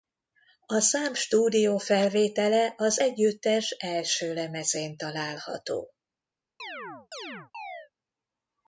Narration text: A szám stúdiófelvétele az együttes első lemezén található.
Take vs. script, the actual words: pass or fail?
pass